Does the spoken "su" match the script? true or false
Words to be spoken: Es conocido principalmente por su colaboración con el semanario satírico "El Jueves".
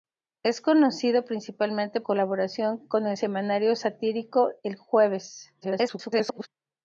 false